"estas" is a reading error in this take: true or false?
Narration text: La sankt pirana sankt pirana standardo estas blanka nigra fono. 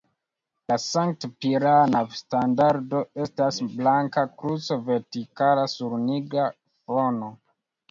false